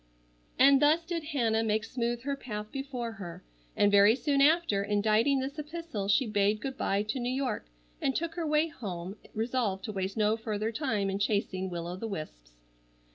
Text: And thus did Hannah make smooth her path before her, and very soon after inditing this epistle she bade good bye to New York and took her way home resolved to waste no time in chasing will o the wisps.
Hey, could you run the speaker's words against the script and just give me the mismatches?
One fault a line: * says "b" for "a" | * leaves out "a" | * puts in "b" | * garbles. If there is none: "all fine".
* puts in "further"